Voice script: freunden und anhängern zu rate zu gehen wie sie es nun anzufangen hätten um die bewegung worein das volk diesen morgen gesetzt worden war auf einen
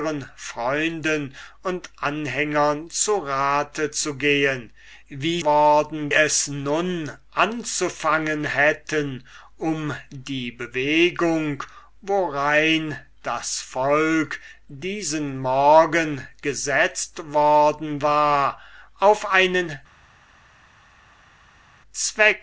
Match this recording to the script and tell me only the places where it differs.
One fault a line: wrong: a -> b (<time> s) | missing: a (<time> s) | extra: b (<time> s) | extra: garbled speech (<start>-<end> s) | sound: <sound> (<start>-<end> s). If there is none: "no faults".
wrong: sie -> worden (5.4 s)